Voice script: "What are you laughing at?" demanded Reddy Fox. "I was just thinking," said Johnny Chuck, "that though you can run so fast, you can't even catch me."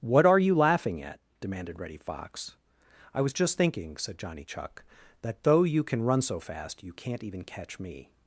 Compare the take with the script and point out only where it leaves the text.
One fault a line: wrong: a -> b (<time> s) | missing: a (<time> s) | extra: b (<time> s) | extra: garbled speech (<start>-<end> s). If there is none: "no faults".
no faults